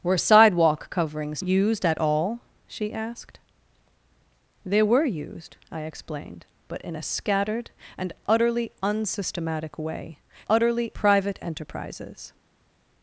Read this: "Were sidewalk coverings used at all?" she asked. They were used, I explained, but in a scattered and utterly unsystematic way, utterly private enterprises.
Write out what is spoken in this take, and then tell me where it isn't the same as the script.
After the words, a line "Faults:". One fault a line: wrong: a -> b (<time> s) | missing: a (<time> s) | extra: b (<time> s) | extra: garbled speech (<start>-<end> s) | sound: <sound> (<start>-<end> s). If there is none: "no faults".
"Were sidewalk coverings used at all?" she asked. They were used, I explained, but in a scattered and utterly unsystematic way, utterly private enterprises.
Faults:
no faults